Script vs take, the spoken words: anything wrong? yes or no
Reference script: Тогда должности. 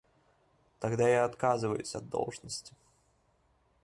yes